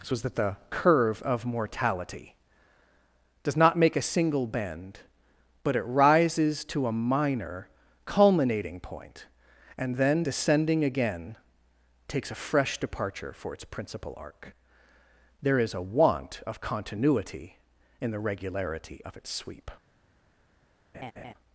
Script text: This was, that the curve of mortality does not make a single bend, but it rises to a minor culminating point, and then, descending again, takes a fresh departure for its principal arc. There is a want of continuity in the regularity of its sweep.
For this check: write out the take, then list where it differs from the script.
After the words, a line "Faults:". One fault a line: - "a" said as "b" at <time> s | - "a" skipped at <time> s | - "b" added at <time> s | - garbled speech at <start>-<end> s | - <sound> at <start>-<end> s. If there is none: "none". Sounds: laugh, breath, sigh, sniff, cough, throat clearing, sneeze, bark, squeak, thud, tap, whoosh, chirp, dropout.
This was, that the curve of mortality does not make a single bend, but it rises to a minor culminating point, and then, descending again, takes a fresh departure for its principal arc. There is a want of continuity in the regularity of its sweep.
Faults:
- laugh at 20.9-21.3 s